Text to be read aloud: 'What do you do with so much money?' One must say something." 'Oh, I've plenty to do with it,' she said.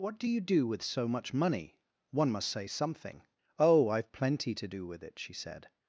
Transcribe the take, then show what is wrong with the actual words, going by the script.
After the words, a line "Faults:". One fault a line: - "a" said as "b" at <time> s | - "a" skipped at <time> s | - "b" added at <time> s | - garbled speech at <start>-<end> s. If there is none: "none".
'What do you do with so much money?' One must say something." 'Oh, I've plenty to do with it,' she said.
Faults:
none